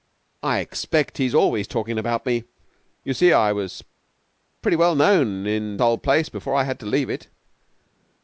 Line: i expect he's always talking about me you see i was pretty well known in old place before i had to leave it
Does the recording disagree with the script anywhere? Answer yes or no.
no